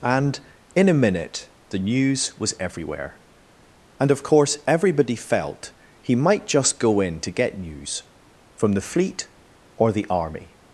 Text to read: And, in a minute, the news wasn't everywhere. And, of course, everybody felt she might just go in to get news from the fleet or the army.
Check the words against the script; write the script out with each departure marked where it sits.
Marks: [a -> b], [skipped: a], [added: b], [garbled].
And, in a minute, the news [wasn't -> was] everywhere. And, of course, everybody felt [she -> he] might just go in to get news from the fleet or the army.